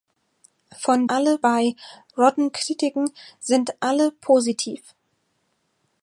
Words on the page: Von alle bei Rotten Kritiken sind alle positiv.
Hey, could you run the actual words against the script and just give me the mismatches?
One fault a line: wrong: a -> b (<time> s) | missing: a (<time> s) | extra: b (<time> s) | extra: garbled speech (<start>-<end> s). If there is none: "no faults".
no faults